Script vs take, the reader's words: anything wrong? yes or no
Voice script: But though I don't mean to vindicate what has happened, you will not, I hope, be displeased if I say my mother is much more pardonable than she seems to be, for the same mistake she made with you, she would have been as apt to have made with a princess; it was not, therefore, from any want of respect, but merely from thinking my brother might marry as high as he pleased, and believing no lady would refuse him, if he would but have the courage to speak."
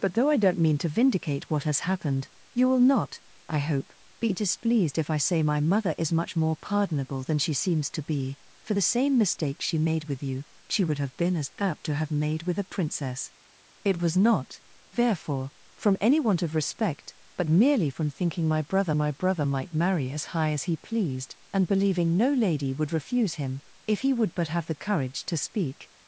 yes